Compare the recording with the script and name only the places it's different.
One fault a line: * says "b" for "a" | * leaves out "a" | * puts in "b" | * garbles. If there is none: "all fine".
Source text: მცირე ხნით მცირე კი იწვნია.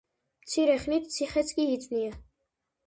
* says "ციხეც" for "მცირე"